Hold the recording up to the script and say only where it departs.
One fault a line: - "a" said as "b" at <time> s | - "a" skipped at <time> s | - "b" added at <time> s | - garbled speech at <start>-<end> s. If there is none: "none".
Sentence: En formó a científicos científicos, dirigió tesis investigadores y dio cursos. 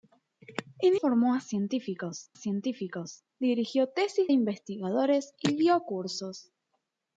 none